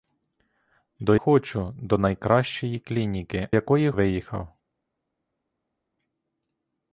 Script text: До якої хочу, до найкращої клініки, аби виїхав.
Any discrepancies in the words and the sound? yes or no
yes